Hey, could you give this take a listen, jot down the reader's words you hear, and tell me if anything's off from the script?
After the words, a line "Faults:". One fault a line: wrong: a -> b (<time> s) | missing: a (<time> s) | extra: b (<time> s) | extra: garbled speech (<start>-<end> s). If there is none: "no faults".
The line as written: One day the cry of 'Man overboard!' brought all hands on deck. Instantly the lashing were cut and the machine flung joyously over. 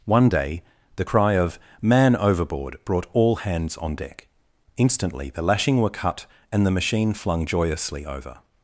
One day the cry of 'Man overboard!' brought all hands on deck. Instantly the lashing were cut and the machine flung joyously over.
Faults:
no faults